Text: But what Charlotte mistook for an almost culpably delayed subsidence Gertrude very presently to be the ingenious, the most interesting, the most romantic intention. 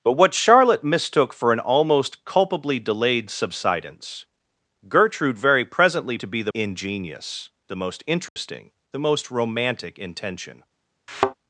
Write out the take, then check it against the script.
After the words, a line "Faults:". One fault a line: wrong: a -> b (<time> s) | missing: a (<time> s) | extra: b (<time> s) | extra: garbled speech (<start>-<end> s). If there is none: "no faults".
But what Charlotte mistook for an almost culpably delayed subsidence Gertrude very presently to be the ingenious, the most interesting, the most romantic intention.
Faults:
no faults